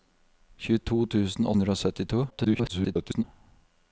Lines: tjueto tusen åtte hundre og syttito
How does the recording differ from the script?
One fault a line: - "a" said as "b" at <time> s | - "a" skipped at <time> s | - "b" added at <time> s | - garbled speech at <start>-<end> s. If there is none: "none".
- "åtte" skipped at 1.5 s
- garbled speech at 2.3-3.2 s